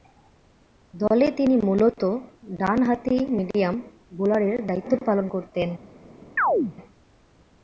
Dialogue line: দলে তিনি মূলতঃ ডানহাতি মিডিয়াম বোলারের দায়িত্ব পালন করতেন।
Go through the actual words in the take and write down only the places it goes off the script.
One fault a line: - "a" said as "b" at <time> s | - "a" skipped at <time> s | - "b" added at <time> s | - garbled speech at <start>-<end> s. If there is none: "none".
none